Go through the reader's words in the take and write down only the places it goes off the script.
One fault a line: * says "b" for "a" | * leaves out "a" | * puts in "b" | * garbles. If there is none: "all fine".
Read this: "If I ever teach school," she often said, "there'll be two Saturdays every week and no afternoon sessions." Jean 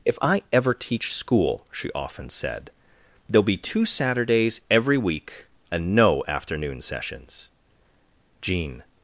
all fine